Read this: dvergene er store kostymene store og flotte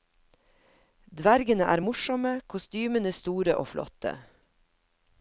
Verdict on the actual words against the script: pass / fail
fail